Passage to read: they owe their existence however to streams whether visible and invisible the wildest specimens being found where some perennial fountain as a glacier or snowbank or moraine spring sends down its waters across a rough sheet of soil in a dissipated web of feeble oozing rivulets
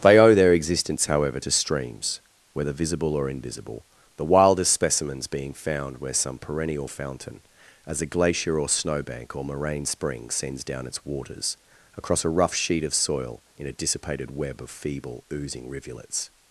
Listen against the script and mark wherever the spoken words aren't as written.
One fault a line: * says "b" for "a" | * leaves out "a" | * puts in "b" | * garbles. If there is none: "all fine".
* says "or" for "and"